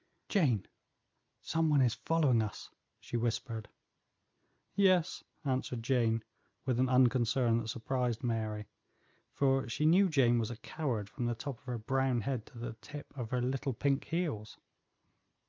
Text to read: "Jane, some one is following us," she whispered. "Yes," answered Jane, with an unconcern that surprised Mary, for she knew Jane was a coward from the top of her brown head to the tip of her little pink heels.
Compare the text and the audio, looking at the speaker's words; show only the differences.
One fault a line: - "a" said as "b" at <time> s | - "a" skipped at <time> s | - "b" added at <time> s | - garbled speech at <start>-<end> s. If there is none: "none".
none